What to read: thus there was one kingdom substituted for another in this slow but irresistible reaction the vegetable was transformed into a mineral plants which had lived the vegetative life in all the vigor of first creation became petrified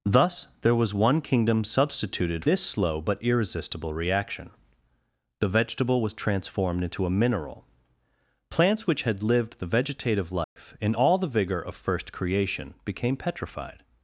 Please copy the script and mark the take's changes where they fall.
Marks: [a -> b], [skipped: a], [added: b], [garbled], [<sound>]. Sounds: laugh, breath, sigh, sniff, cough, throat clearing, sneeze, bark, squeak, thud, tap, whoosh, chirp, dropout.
thus there was one kingdom substituted [skipped: for another in] this slow but irresistible reaction the vegetable was transformed into a mineral plants which had lived the vegetative life [dropout] in all the vigor of first creation became petrified